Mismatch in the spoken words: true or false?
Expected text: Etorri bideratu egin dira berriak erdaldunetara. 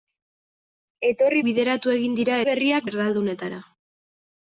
false